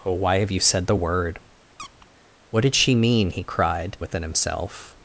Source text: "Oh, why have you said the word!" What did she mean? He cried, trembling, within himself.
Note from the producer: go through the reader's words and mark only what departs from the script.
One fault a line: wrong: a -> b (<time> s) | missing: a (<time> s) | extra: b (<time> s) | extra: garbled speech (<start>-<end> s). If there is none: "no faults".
missing: trembling (4.0 s)